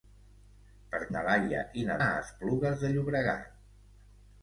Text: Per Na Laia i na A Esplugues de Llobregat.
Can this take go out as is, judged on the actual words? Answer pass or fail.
pass